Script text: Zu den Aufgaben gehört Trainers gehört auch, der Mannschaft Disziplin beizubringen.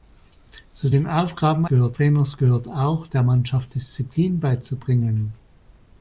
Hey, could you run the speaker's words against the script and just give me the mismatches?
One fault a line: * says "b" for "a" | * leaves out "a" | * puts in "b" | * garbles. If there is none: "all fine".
all fine